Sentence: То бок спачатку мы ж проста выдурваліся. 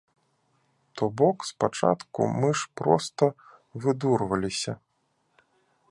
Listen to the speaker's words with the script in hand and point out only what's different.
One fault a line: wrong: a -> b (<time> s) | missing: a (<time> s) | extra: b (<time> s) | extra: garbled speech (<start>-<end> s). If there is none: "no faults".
no faults